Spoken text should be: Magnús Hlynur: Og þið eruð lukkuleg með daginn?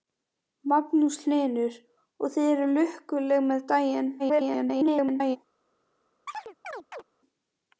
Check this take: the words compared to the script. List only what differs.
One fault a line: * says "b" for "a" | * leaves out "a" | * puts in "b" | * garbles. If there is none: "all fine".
* garbles